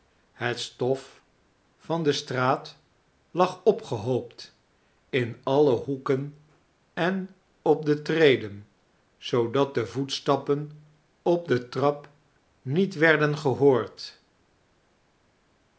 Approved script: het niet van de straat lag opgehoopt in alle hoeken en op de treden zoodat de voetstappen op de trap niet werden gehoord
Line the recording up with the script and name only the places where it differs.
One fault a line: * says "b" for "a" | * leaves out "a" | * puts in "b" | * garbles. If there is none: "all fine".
* says "stof" for "niet"